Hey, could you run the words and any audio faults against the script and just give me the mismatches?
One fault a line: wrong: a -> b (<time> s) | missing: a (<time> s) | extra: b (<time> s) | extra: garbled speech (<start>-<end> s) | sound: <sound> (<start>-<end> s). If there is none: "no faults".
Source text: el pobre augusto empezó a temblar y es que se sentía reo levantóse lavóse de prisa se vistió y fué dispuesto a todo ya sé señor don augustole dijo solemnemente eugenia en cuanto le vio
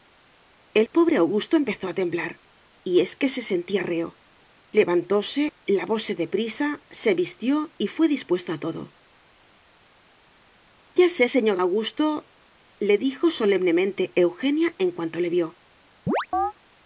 missing: don (11.6 s)
sound: chirp (16.1-16.5 s)